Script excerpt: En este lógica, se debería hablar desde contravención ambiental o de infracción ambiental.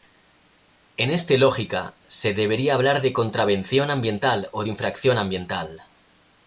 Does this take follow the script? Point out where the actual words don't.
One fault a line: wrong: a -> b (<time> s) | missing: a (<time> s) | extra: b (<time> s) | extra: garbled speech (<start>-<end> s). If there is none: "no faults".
wrong: desde -> de (3.0 s)